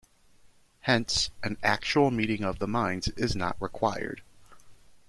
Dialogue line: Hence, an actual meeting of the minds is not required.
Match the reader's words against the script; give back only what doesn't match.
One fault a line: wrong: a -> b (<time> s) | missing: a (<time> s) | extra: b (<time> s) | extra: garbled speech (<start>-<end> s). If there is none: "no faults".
no faults